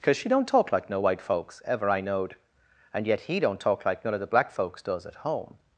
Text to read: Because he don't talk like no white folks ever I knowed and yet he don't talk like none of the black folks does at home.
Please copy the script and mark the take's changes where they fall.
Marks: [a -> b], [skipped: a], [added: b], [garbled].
Because [he -> she] don't talk like no white folks ever I knowed and yet he don't talk like none of the black folks does at home.